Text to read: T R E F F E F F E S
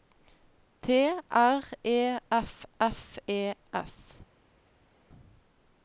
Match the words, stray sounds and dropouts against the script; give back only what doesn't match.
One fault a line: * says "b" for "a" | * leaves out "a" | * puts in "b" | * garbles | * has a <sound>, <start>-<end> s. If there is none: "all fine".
* leaves out "F F E"